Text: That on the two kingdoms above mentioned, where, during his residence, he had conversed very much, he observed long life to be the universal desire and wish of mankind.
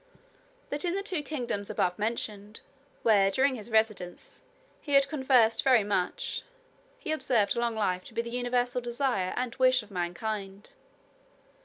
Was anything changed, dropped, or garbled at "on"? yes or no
yes